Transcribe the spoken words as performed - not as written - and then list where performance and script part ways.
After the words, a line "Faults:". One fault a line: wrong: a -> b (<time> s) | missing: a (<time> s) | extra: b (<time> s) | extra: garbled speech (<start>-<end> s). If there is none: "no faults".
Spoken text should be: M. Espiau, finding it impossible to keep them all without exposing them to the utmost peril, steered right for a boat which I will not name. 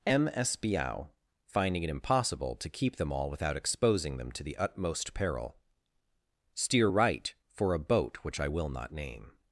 M. Espiau, finding it impossible to keep them all without exposing them to the utmost peril, steer right for a boat which I will not name.
Faults:
wrong: steered -> steer (6.5 s)